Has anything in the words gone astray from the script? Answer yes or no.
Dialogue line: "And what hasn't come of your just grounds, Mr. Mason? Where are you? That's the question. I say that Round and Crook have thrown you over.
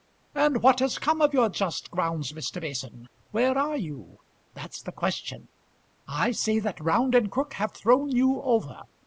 yes